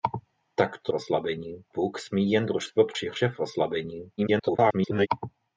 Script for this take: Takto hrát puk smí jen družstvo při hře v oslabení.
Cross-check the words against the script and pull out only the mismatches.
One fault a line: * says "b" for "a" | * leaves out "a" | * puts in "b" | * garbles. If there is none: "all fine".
* says "oslabení" for "hrát"
* garbles